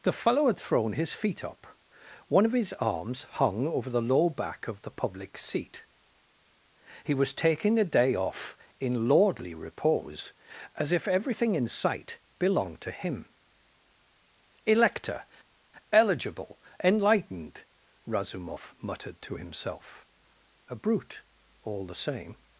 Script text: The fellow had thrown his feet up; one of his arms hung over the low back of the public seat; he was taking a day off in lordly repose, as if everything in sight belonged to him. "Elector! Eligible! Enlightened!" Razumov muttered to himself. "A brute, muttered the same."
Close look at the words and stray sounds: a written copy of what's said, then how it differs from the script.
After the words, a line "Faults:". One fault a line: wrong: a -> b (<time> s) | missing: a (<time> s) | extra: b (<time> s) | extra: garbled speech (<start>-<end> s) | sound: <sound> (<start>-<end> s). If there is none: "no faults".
The fellow had thrown his feet up; one of his arms hung over the low back of the public seat; he was taking a day off in lordly repose, as if everything in sight belonged to him. "Elector! Eligible! Enlightened!" Razumov muttered to himself. "A brute, all the same."
Faults:
wrong: muttered -> all (21.6 s)